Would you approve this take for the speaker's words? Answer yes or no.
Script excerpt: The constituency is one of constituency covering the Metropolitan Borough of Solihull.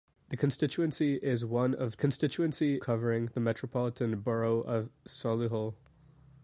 yes